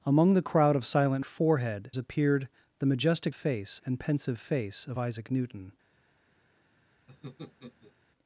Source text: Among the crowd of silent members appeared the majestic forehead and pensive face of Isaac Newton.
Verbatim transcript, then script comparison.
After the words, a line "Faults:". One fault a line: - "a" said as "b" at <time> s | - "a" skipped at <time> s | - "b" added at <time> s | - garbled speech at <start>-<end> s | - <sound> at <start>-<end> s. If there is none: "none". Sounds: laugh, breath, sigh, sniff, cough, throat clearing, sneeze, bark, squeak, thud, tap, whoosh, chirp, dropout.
Among the crowd of silent forehead appeared the majestic face and pensive face of Isaac Newton.
Faults:
- "members" said as "forehead" at 1.2 s
- "forehead" said as "face" at 3.3 s
- laugh at 7.1-7.9 s